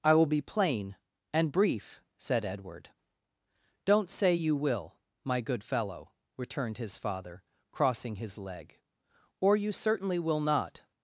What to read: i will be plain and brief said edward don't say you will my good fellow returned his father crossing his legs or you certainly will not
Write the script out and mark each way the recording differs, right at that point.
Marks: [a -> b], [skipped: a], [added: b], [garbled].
i will be plain and brief said edward don't say you will my good fellow returned his father crossing his [legs -> leg] or you certainly will not